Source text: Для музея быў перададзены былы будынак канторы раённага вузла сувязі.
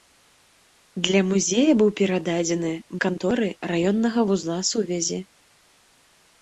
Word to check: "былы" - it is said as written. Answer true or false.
false